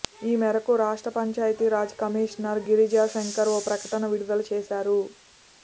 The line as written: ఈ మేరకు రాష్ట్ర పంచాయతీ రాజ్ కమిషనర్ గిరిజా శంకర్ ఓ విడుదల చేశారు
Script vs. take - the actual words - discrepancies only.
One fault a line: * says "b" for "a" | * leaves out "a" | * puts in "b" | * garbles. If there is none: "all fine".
* puts in "ప్రకటన"